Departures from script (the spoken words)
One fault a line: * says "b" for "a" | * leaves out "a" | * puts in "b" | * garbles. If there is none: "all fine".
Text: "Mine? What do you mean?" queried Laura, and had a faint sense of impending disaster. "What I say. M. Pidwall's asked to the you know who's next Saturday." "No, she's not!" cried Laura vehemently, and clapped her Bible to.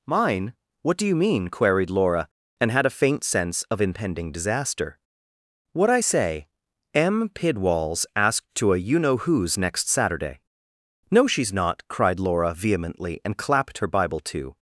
* says "a" for "the"